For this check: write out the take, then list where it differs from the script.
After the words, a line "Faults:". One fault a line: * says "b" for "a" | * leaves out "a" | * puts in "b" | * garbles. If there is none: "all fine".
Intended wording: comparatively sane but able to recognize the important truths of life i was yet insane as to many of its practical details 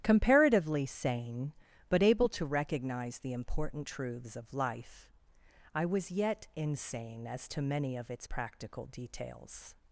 comparatively sane but able to recognize the important truths of life i was yet insane as to many of its practical details
Faults:
all fine